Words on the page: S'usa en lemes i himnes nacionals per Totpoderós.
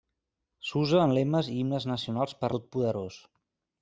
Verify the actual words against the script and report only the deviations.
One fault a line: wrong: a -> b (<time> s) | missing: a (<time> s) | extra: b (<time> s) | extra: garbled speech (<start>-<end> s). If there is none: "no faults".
no faults